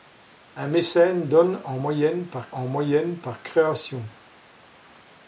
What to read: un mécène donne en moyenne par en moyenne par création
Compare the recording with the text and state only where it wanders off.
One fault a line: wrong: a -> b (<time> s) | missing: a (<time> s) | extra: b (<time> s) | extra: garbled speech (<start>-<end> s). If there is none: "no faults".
no faults